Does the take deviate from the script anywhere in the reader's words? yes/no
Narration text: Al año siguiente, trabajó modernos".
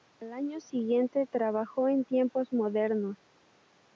yes